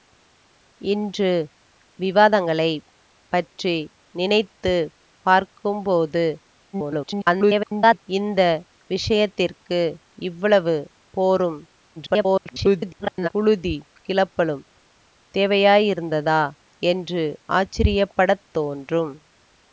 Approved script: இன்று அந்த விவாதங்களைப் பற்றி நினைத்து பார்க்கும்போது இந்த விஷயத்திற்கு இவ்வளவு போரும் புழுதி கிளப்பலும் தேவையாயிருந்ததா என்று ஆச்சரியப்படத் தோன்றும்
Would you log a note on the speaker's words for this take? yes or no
yes